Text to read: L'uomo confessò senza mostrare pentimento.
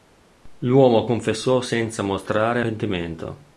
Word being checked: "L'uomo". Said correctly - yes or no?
yes